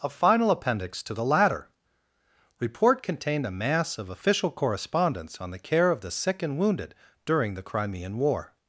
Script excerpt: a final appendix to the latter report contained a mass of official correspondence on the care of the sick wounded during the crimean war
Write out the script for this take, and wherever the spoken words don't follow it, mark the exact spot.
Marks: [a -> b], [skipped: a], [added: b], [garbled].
a final appendix to the latter report contained a mass of official correspondence on the care of the sick [added: and] wounded during the crimean war